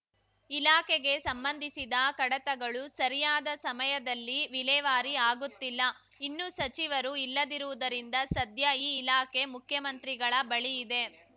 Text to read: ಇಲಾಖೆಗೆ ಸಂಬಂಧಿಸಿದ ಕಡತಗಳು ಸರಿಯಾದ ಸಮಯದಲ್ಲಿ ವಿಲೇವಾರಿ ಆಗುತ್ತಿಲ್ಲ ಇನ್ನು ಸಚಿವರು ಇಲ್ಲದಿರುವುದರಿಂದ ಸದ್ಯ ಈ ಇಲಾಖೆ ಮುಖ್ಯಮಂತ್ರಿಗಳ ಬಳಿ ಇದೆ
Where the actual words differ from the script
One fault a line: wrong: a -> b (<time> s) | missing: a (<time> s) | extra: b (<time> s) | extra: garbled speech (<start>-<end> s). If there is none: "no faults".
no faults